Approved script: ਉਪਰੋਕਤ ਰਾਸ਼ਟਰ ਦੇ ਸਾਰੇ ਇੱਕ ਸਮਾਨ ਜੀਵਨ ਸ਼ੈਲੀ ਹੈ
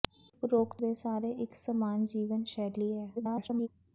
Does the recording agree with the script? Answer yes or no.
no